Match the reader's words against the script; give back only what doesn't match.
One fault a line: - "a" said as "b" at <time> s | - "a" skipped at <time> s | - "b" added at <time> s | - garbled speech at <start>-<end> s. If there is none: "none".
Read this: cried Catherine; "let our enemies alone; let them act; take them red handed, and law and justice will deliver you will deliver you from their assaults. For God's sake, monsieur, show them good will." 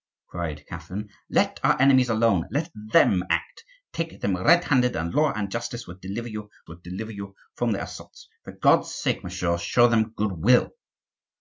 none